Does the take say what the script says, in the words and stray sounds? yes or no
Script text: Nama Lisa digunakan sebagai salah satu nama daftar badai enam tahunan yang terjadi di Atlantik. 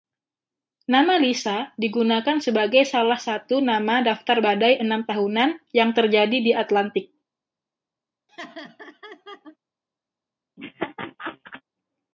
no